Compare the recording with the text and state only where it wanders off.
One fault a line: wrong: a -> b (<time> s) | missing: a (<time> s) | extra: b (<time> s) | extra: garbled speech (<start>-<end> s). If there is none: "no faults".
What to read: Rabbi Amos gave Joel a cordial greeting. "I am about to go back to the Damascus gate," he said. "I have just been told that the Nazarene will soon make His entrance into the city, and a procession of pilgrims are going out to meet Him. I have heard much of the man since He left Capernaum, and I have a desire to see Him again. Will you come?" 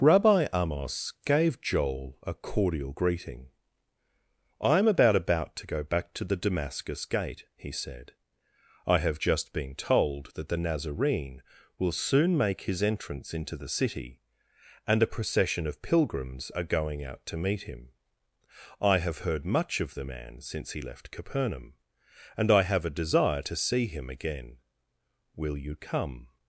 extra: about (5.2 s)